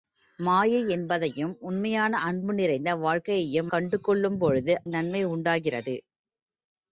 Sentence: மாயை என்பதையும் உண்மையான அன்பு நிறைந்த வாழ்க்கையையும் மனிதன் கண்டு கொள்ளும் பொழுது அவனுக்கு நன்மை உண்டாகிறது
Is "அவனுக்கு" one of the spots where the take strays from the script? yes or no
yes